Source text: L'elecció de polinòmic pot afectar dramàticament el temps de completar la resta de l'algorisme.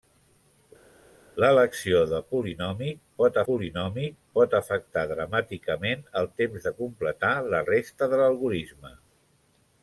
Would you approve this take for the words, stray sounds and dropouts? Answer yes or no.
no